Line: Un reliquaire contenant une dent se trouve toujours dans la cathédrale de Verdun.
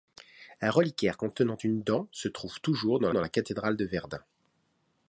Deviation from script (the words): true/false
true